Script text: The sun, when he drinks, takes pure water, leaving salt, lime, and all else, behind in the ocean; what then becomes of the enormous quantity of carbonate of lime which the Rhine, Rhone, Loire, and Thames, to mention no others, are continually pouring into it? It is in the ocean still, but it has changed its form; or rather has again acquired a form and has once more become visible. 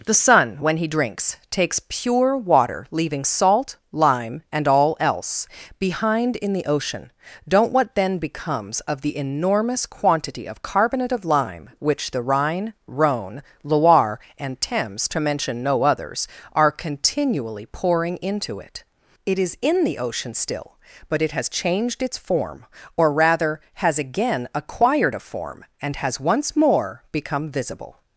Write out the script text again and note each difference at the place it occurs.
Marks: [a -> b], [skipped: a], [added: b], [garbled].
The sun, when he drinks, takes pure water, leaving salt, lime, and all else, behind in the ocean; [added: don't] what then becomes of the enormous quantity of carbonate of lime which the Rhine, Rhone, Loire, and Thames, to mention no others, are continually pouring into it? It is in the ocean still, but it has changed its form; or rather has again acquired a form and has once more become visible.